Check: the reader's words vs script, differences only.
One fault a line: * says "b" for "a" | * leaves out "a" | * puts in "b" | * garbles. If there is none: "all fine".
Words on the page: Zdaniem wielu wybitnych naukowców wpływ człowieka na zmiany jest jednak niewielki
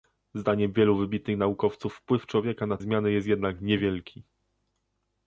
all fine